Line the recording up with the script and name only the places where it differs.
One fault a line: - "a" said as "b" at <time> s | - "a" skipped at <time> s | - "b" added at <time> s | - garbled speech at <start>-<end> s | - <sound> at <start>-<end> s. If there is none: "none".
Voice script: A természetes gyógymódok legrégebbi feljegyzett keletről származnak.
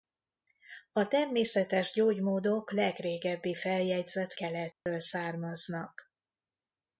- dropout at 4.7-4.9 s